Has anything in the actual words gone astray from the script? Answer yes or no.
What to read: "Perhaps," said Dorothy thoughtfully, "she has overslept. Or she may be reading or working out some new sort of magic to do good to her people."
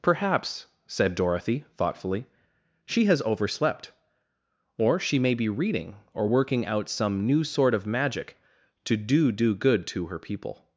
yes